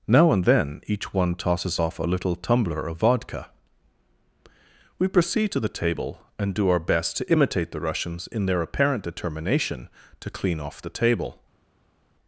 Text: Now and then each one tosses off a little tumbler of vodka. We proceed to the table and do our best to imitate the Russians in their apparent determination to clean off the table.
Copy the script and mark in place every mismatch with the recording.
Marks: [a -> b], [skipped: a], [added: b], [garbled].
Now and then each one tosses off a little tumbler of vodka. We proceed to the table and do our best to imitate the Russians in their apparent determination to clean off the table.